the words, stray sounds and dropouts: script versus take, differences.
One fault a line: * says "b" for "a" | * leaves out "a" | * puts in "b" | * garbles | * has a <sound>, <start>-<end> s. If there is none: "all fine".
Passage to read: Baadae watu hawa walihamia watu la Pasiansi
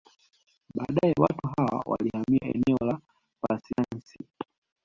* says "eneo" for "watu"
* has a dropout, 3.7-3.8 s